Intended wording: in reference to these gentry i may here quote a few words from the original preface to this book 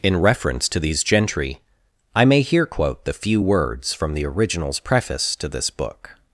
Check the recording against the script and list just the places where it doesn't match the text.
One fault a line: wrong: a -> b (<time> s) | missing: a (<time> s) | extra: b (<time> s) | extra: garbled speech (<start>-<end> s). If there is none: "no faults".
wrong: a -> the (3.0 s)
wrong: original -> originals (4.3 s)